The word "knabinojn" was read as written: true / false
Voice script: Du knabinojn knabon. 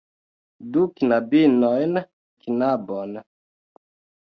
true